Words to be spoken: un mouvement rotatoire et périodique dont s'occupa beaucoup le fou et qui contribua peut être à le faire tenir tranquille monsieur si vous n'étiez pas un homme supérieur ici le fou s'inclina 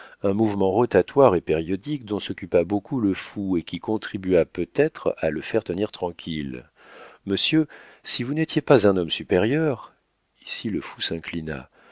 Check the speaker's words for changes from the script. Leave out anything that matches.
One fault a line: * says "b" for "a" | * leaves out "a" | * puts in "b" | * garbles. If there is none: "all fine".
all fine